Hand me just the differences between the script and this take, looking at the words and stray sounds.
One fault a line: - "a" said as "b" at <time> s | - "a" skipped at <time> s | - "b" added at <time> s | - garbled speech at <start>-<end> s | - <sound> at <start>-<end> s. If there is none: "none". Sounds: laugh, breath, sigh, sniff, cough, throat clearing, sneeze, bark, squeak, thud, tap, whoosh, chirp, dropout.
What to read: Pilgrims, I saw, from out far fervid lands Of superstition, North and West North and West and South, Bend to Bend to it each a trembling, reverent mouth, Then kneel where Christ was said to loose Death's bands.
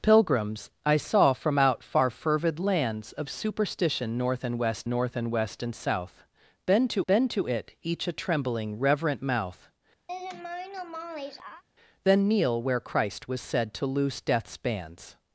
- laugh at 10.1-11.6 s